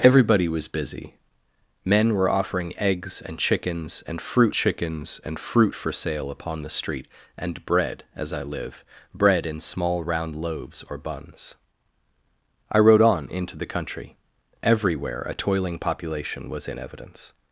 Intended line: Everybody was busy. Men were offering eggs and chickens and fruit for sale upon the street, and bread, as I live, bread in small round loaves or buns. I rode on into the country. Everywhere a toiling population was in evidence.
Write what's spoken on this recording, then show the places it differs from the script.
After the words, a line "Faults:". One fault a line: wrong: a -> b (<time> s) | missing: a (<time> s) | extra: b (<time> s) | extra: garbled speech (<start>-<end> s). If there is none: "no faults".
Everybody was busy. Men were offering eggs and chickens and fruit chickens and fruit for sale upon the street, and bread, as I live, bread in small round loaves or buns. I rode on into the country. Everywhere a toiling population was in evidence.
Faults:
extra: chickens and fruit (4.5 s)